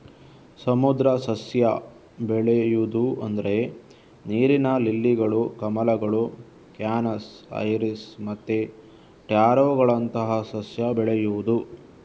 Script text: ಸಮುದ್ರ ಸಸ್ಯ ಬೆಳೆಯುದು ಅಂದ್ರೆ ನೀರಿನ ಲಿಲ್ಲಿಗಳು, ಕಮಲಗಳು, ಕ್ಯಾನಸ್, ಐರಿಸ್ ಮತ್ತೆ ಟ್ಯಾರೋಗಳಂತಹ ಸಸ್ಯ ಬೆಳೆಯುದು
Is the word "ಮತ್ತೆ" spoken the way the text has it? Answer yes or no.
yes